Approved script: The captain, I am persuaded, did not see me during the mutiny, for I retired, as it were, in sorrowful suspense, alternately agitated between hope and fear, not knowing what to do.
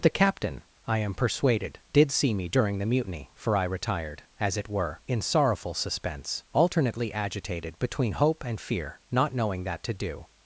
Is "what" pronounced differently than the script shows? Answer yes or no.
yes